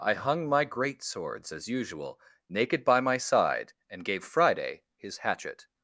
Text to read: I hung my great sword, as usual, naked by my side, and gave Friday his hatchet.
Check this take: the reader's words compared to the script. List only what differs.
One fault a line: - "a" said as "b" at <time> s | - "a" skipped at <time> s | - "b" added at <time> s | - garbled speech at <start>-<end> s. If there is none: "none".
- "sword" said as "swords" at 1.0 s